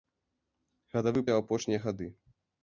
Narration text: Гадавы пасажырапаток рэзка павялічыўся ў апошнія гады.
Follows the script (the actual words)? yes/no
no